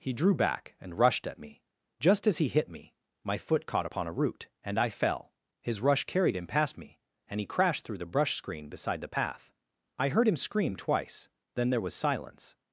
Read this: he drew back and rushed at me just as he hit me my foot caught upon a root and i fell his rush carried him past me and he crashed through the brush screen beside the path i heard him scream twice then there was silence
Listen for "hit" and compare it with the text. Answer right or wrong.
right